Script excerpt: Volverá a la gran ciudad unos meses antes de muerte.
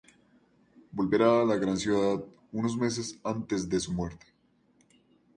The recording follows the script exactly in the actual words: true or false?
false